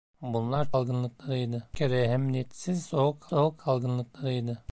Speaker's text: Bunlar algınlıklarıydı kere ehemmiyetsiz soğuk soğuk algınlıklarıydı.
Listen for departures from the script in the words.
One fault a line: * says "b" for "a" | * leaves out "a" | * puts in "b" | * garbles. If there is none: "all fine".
all fine